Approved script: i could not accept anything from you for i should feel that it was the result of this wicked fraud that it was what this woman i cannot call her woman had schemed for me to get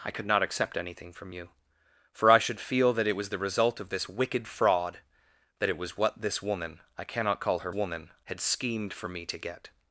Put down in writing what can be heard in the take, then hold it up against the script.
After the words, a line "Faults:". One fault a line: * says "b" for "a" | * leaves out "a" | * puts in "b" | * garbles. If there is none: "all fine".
i could not accept anything from you for i should feel that it was the result of this wicked fraud that it was what this woman i cannot call her woman had schemed for me to get
Faults:
all fine